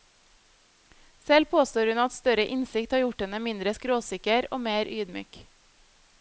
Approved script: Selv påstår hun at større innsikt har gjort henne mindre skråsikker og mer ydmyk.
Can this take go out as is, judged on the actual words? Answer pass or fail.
pass